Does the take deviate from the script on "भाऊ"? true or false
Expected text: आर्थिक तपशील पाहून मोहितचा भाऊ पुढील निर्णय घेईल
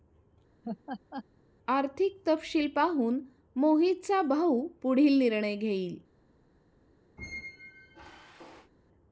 false